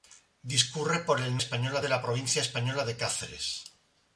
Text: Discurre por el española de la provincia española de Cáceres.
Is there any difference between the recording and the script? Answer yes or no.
no